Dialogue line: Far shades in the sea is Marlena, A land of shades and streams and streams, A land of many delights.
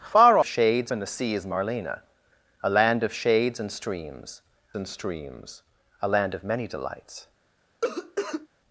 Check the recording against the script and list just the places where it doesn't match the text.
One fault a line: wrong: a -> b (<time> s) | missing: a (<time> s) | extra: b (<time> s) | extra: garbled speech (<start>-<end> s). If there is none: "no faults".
no faults